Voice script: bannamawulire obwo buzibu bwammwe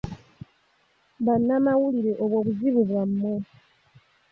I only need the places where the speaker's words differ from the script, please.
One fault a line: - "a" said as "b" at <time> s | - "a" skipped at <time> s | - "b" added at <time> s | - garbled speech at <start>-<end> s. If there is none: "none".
none